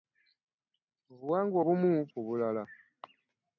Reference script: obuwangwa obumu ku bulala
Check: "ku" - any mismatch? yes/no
no